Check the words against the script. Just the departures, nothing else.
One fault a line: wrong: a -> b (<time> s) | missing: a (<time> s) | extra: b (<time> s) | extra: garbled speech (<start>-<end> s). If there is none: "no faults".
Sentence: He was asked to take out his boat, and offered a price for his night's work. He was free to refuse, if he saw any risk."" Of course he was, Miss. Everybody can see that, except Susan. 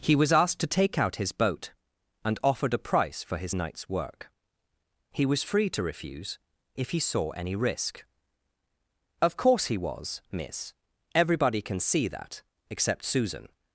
no faults